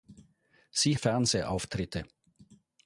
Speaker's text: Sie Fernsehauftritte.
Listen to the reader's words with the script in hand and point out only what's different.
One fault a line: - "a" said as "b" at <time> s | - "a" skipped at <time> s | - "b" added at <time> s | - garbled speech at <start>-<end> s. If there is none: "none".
none